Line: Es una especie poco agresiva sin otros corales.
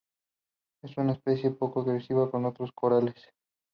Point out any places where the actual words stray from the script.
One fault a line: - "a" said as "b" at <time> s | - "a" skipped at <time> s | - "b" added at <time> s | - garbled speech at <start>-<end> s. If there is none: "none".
- "sin" said as "con" at 2.3 s